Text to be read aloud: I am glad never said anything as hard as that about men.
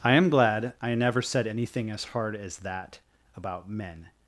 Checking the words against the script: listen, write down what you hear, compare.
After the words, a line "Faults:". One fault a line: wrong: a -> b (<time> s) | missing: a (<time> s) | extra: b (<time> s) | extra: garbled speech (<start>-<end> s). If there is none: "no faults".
I am glad I never said anything as hard as that about men.
Faults:
extra: I (0.8 s)